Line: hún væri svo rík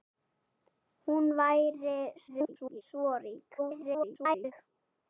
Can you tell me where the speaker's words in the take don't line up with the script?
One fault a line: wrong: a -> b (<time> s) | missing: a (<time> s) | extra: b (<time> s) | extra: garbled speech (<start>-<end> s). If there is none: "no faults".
extra: garbled speech (2.3-2.8 s)
extra: garbled speech (3.6-4.5 s)